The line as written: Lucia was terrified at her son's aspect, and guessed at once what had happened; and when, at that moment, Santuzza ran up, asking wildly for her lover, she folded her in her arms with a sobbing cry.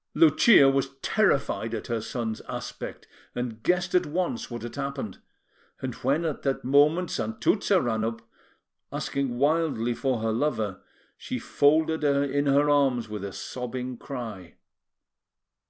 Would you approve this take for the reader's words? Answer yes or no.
yes